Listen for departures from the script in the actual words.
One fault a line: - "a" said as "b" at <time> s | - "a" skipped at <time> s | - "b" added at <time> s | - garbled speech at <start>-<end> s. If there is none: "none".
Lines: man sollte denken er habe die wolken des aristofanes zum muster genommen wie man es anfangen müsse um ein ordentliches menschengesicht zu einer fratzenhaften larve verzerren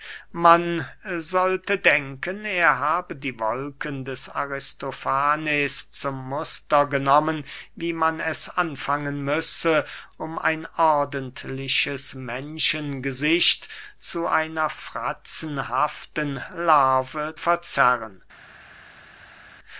none